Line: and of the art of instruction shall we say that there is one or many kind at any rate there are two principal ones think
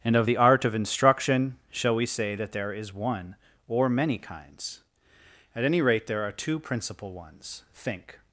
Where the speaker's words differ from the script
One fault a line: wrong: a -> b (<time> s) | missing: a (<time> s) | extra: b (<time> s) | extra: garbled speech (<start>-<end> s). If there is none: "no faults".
wrong: kind -> kinds (4.2 s)